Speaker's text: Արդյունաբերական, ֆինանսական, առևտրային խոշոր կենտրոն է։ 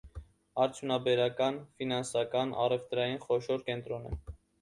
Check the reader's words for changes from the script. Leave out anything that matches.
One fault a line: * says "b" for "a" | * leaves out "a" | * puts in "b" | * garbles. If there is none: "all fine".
all fine